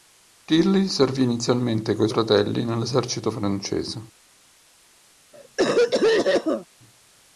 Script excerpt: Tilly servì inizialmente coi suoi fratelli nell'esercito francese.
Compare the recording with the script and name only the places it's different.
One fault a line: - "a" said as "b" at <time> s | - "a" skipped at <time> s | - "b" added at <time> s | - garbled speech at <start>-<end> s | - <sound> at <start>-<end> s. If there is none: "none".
- "suoi" skipped at 2.1 s
- cough at 5.3-6.7 s